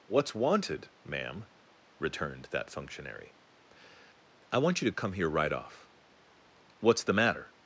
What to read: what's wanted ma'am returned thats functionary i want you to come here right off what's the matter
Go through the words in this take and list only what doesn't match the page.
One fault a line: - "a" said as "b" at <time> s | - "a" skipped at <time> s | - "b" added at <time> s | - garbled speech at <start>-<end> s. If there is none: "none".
- "thats" said as "that" at 2.5 s